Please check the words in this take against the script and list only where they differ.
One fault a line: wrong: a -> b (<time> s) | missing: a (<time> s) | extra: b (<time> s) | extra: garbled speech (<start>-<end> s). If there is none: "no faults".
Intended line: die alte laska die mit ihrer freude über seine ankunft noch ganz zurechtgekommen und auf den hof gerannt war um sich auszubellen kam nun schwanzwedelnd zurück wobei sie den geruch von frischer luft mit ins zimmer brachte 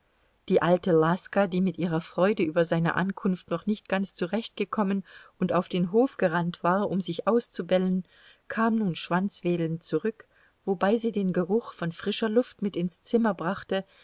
extra: nicht (3.7 s)